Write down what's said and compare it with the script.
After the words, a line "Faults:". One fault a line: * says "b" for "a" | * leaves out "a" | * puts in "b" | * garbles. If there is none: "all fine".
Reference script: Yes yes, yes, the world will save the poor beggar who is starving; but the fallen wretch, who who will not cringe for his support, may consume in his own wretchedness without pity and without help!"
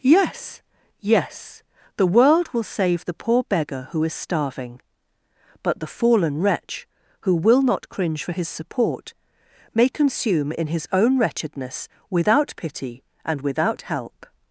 Yes, yes, the world will save the poor beggar who is starving; but the fallen wretch, who will not cringe for his support, may consume in his own wretchedness without pity and without help!"
Faults:
* leaves out "yes"
* leaves out "who"